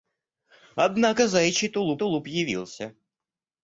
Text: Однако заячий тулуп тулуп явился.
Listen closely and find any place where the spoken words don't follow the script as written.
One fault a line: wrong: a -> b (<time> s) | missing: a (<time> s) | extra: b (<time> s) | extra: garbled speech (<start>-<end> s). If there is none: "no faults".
no faults